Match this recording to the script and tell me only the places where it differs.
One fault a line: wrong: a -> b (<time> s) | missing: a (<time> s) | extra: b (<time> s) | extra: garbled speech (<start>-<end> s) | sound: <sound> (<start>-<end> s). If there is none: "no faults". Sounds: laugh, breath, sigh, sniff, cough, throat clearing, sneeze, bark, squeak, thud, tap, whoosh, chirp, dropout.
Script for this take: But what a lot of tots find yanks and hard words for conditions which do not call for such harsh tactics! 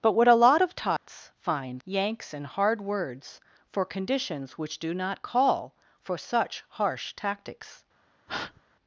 sound: dropout (1.0-1.1 s)
sound: breath (8.3-8.6 s)